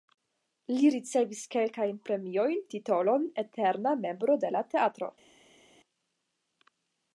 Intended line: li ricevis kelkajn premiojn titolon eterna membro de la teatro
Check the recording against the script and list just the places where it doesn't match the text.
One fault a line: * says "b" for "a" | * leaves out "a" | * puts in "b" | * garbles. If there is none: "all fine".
all fine